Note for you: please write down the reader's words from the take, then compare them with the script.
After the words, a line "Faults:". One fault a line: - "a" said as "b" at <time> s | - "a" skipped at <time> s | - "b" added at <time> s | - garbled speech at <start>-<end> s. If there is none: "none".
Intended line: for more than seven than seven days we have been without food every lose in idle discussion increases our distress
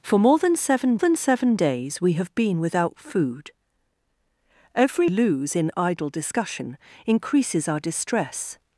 for more than seven than seven days we have been without food every lose in idle discussion increases our distress
Faults:
none